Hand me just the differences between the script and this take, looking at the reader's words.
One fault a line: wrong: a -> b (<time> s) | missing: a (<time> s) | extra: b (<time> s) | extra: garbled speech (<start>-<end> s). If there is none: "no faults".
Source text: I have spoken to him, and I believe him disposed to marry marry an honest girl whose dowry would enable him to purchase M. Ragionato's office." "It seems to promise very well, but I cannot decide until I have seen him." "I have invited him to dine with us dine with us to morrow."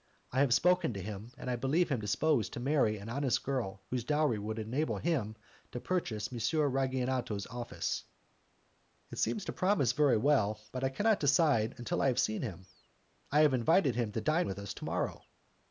missing: marry (3.0 s)
missing: dine with us (14.7 s)